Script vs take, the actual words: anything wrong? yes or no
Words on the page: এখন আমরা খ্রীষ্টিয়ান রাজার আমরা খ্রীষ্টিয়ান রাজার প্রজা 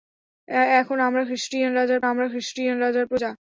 no